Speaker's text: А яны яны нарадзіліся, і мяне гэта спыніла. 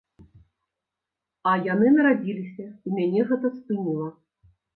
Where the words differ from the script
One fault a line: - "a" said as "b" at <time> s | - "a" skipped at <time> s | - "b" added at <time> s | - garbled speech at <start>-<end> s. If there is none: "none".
- "яны" skipped at 1.9 s